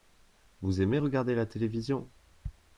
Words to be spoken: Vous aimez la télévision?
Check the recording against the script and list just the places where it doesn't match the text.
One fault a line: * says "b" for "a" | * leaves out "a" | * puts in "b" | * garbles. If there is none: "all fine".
* puts in "regarder"